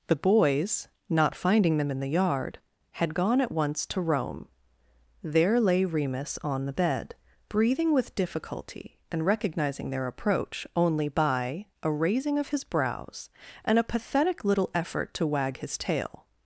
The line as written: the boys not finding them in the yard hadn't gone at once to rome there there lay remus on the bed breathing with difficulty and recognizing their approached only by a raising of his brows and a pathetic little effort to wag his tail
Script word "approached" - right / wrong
wrong